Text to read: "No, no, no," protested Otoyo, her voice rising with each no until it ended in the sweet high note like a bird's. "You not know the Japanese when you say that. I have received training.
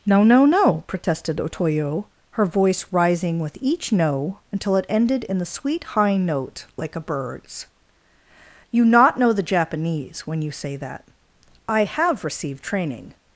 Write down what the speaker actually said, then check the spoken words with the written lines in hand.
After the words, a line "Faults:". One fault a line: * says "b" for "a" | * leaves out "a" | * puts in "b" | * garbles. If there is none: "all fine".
"No, no, no," protested Otoyo, her voice rising with each no until it ended in the sweet high note like a bird's. "You not know the Japanese when you say that. I have received training.
Faults:
all fine